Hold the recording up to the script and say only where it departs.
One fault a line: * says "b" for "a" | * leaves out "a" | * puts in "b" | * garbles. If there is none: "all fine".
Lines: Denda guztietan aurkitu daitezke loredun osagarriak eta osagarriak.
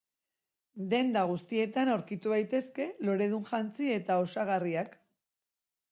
* says "jantzi" for "osagarriak"